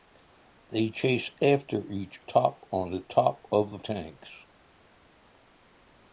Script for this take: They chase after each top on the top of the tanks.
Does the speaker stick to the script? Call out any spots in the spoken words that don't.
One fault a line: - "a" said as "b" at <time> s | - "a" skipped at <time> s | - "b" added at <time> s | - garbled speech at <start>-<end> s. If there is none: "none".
none